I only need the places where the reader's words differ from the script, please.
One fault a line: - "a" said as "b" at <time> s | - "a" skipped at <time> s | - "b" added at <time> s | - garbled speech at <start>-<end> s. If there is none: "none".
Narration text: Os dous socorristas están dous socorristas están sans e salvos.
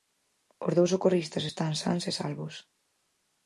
- "dous socorristas están" skipped at 1.7 s